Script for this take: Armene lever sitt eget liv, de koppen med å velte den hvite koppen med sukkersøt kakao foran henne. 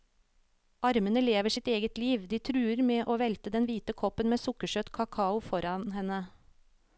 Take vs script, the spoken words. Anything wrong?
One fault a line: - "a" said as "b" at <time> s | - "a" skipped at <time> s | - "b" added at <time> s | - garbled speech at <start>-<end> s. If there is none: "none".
- "koppen" said as "truer" at 2.5 s